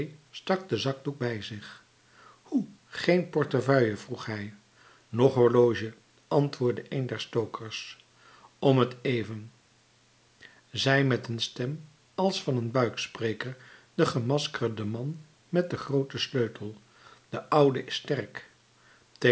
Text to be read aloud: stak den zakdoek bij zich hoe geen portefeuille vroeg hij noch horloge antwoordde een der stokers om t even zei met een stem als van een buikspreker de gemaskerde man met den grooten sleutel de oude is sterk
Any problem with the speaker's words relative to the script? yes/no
no